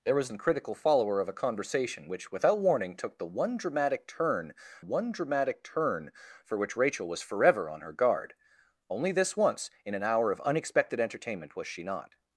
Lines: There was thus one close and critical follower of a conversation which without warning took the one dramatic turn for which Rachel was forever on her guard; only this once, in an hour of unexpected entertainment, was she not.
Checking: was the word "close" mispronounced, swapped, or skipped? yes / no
yes